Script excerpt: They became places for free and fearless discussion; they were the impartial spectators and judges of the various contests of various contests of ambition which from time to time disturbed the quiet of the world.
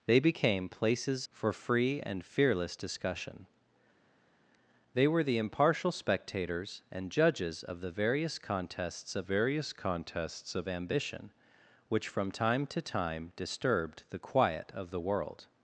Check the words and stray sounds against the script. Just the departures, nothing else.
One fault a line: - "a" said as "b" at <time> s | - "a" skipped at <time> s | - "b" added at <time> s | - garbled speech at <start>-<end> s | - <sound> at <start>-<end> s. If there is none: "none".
none